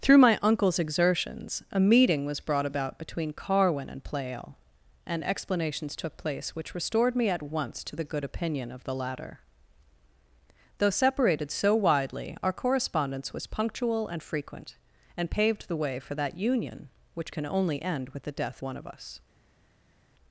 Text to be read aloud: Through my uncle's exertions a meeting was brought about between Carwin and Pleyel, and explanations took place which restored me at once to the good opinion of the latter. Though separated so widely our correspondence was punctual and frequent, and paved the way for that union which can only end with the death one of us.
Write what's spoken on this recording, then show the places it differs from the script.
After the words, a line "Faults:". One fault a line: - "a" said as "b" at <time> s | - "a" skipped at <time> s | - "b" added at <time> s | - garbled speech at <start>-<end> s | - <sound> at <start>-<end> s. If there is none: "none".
Through my uncle's exertions a meeting was brought about between Carwin and Pleyel, and explanations took place which restored me at once to the good opinion of the latter. Though separated so widely our correspondence was punctual and frequent, and paved the way for that union which can only end with the death one of us.
Faults:
none